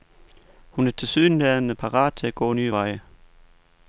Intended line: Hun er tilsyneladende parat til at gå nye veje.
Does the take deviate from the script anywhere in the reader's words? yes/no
no